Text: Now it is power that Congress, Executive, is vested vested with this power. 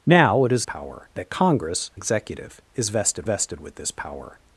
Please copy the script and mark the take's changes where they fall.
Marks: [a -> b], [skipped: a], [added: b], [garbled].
Now it is power that Congress, Executive, is vested vested with this power.